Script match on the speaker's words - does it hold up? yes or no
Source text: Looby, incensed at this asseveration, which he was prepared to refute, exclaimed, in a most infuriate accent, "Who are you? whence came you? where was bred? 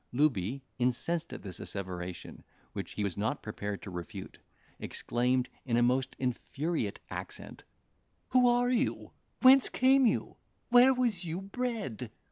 no